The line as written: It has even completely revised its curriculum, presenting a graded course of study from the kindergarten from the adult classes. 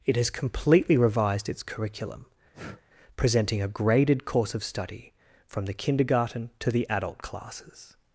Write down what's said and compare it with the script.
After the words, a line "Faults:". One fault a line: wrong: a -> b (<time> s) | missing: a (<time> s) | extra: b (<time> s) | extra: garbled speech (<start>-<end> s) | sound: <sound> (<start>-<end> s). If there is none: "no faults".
It has completely revised its curriculum, presenting a graded course of study from the kindergarten to the adult classes.
Faults:
missing: even (0.3 s)
sound: breath (2.5-2.8 s)
wrong: from -> to (6.6 s)